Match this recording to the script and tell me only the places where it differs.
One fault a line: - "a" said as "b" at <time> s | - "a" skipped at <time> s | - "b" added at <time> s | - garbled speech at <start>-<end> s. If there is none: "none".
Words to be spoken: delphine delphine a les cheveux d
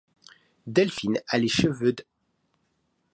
- "delphine" skipped at 1.2 s